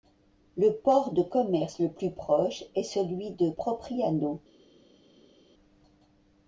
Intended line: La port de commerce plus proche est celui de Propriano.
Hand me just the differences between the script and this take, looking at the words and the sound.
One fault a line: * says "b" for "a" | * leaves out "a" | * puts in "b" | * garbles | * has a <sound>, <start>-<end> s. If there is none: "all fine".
* says "Le" for "La"
* puts in "le"